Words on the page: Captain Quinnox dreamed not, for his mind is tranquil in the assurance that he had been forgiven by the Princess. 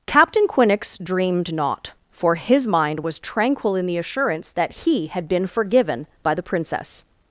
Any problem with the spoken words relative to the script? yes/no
yes